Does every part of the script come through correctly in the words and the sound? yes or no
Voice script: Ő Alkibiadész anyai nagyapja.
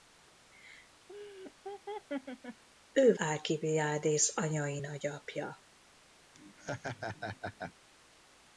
no